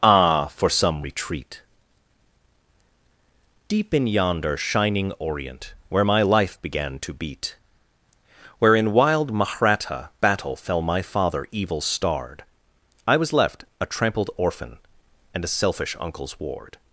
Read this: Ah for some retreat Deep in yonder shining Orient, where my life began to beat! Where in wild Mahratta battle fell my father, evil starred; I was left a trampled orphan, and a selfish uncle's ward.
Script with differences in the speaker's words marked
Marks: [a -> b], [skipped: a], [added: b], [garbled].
Ah for some retreat Deep in yonder shining Orient, where my life began to beat! Where in wild Mahratta battle fell my father, evil starred; I was left a trampled orphan, and a selfish uncle's ward.